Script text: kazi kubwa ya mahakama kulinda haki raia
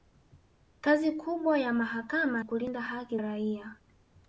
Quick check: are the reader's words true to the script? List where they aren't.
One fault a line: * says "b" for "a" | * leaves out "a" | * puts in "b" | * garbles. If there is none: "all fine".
all fine